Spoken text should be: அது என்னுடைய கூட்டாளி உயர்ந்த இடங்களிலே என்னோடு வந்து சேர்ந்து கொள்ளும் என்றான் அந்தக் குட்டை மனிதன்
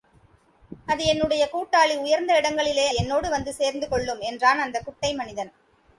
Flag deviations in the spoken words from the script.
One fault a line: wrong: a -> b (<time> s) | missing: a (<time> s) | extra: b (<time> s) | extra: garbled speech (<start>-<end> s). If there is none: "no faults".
no faults